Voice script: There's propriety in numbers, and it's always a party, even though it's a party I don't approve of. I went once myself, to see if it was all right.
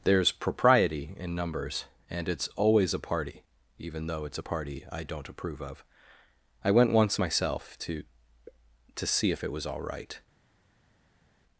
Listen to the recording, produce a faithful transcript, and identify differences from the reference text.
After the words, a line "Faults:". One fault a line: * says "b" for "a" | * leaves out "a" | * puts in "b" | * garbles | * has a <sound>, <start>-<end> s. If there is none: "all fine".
There's propriety in numbers, and it's always a party, even though it's a party I don't approve of. I went once myself, to to see if it was all right.
Faults:
* puts in "to"